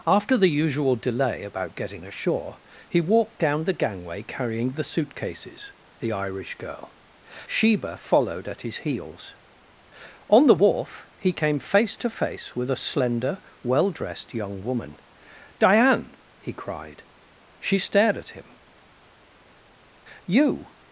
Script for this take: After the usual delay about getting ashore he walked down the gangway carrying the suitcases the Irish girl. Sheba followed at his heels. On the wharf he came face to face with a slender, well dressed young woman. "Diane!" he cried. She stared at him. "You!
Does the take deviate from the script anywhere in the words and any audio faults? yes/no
no